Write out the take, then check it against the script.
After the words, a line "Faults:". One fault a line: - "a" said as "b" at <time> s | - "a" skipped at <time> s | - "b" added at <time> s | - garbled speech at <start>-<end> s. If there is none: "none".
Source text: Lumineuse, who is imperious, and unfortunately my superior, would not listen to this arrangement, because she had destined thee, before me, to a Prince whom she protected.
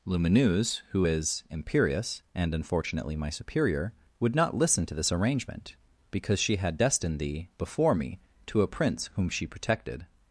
Lumineuse, who is imperious, and unfortunately my superior, would not listen to this arrangement, because she had destined thee, before me, to a Prince whom she protected.
Faults:
none